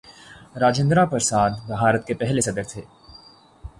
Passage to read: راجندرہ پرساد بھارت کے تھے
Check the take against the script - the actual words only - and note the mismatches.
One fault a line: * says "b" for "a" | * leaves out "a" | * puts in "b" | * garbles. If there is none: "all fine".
* puts in "پہلے صدر"